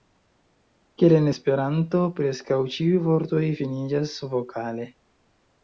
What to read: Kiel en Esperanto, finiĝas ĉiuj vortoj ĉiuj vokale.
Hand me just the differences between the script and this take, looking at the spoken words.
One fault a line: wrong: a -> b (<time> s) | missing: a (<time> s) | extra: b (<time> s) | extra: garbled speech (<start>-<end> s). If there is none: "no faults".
wrong: finiĝas -> preskaŭ (2.2 s)
wrong: ĉiuj -> finiĝas (3.6 s)